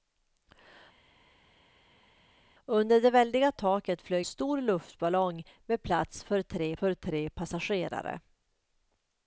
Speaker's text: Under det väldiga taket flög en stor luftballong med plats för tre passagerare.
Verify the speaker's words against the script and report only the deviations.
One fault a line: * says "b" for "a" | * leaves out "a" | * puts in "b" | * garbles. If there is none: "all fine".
* leaves out "en"
* puts in "för tre"